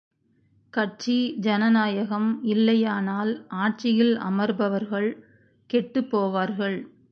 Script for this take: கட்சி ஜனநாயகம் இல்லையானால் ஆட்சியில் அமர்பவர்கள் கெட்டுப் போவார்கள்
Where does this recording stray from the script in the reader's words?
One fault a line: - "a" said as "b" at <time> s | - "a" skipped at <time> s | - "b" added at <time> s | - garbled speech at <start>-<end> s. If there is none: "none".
none